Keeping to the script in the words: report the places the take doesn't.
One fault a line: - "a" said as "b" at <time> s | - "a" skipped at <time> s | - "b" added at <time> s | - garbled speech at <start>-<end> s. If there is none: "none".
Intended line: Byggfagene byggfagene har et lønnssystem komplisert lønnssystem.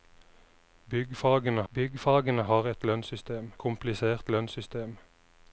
none